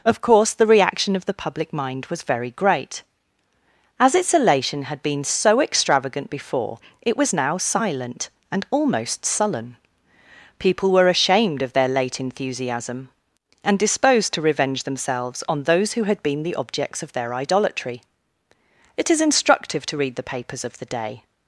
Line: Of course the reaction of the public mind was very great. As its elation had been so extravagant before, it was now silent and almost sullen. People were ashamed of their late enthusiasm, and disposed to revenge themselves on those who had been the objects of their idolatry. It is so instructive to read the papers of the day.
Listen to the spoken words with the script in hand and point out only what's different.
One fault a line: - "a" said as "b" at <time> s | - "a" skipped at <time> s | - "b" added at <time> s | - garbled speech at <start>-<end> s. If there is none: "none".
- "so" skipped at 19.2 s